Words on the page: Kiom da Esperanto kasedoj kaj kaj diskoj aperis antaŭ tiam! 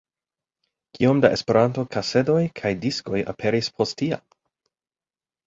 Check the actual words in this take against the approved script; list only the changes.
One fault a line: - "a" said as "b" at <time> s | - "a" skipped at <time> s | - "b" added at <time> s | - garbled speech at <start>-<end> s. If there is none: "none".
- "kaj" skipped at 2.7 s
- "antaŭ" said as "post" at 3.8 s